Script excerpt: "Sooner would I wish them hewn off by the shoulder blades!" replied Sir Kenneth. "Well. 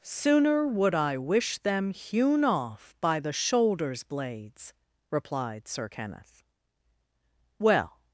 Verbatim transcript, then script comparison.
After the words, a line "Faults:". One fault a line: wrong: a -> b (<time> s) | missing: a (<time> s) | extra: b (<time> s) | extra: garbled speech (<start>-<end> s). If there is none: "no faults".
"Sooner would I wish them hewn off by the shoulders blades!" replied Sir Kenneth. "Well.
Faults:
wrong: shoulder -> shoulders (3.3 s)